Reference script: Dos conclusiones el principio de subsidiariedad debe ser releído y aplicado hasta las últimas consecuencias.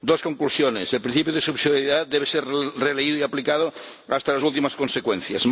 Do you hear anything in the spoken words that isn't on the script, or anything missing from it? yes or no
no